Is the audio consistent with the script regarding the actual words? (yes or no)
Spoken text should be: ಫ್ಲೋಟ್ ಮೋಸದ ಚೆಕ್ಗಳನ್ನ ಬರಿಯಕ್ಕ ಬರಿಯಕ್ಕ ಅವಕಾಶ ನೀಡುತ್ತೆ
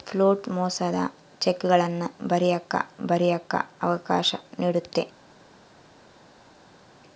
yes